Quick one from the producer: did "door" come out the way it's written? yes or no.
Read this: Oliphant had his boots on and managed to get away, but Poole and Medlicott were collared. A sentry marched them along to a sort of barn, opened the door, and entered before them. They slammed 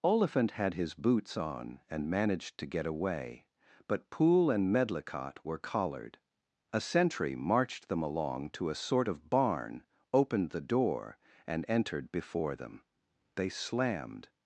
yes